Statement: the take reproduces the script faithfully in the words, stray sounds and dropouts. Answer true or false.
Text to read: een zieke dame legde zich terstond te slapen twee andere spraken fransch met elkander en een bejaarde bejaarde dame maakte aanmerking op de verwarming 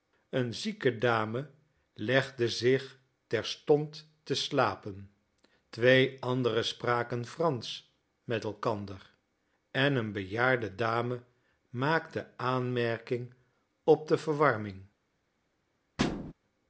false